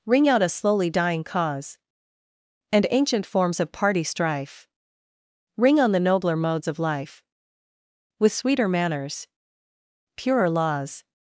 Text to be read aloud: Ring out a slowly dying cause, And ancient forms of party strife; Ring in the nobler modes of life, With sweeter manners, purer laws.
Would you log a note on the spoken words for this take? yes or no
yes